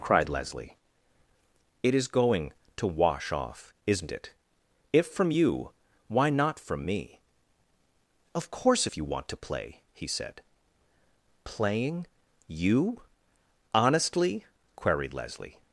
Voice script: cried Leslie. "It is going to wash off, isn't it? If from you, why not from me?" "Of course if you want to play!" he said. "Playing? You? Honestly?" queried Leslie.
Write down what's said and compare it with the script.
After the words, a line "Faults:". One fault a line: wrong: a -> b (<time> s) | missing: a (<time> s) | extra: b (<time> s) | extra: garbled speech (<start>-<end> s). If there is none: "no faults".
cried Leslie. "It is going to wash off, isn't it? If from you, why not from me?" "Of course if you want to play!" he said. "Playing? You? Honestly?" queried Leslie.
Faults:
no faults